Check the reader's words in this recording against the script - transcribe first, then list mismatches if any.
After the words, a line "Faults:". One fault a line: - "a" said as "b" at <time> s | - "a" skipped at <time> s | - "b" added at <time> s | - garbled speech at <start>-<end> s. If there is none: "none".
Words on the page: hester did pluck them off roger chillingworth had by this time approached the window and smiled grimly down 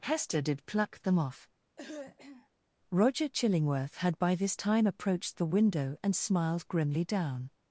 hester did pluck them off roger chillingworth had by this time approached the window and smiled grimly down
Faults:
none